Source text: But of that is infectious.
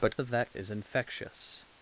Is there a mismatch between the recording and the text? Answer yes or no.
no